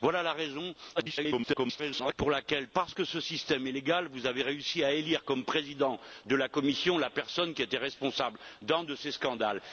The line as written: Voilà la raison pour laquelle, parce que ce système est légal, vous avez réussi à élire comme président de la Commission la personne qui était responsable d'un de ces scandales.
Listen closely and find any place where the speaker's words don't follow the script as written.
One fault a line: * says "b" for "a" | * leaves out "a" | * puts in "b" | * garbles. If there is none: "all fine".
* garbles